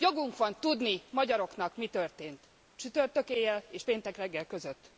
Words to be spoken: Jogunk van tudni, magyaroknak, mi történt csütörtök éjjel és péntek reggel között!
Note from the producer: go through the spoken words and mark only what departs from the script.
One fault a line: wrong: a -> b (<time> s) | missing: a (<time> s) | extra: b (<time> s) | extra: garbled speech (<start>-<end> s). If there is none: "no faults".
no faults